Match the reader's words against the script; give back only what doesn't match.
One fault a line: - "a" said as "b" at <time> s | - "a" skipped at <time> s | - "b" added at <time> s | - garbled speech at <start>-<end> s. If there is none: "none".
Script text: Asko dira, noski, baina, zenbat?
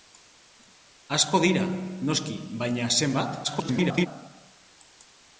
- garbled speech at 3.4-4.1 s